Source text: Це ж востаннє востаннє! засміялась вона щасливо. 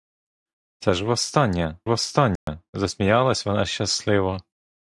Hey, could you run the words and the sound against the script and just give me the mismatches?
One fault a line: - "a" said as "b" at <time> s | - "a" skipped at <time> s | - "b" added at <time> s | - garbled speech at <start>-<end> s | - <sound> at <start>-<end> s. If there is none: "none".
- dropout at 2.4-2.5 s